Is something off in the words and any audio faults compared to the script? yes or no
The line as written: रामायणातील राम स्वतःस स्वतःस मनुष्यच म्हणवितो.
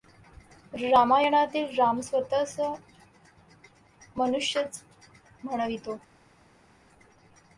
yes